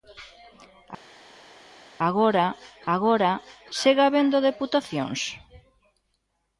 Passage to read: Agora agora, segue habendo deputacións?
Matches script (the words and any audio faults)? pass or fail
pass